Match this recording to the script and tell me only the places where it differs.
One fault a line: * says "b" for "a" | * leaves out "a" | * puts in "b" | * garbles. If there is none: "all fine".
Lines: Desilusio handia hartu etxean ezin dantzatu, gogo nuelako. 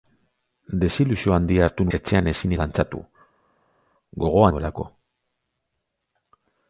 all fine